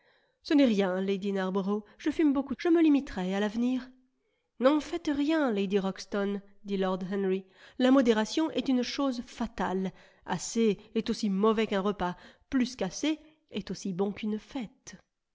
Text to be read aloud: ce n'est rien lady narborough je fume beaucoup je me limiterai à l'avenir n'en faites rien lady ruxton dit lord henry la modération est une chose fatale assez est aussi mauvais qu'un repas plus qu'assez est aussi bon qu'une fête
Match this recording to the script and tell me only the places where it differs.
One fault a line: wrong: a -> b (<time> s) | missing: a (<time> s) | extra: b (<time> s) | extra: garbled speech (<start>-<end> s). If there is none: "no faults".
no faults